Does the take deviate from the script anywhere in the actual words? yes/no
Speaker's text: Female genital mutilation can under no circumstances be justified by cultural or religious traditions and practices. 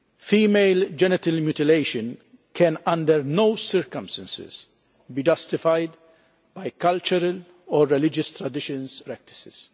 yes